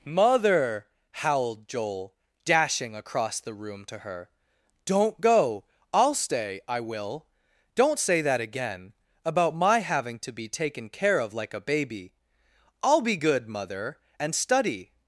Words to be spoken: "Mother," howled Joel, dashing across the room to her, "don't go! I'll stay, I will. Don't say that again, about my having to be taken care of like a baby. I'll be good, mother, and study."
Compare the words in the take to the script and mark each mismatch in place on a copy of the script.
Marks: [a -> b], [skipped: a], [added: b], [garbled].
"Mother," howled Joel, dashing across the room to her, "don't go! I'll stay, I will. Don't say that again, about my having to be taken care of like a baby. I'll be good, mother, and study."